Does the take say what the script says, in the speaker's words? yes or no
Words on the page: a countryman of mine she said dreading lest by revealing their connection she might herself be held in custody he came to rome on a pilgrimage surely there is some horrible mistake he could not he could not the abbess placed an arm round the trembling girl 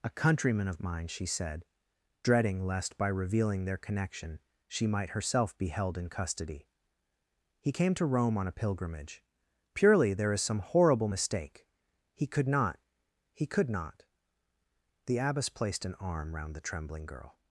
no